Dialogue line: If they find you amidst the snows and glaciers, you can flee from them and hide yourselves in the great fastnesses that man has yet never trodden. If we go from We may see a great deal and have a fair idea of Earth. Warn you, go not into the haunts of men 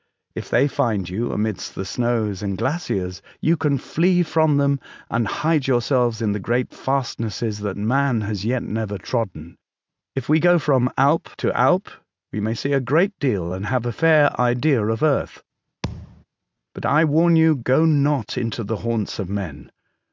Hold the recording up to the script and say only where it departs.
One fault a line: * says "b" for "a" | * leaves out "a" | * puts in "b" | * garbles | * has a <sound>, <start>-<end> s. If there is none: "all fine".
* puts in "Alp to Alp"
* has a thud, 15.8-16.2 s
* puts in "But I"